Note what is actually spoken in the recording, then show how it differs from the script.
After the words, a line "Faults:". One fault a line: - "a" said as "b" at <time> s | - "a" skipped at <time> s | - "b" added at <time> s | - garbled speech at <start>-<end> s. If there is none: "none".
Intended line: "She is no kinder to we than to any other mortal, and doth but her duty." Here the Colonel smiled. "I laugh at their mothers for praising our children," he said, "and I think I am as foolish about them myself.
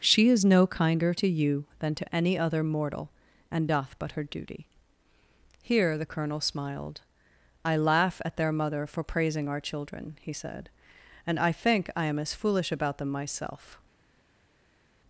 "She is no kinder to you than to any other mortal, and doth but her duty." Here the Colonel smiled. "I laugh at their mother for praising our children," he said, "and I think I am as foolish about them myself.
Faults:
- "we" said as "you" at 1.3 s
- "mothers" said as "mother" at 8.5 s